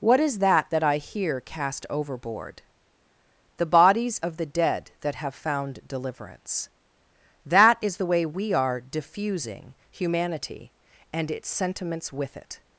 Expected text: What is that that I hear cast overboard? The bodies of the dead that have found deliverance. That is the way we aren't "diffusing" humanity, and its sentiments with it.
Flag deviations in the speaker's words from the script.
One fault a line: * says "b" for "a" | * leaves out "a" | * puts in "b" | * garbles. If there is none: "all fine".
* says "are" for "aren't"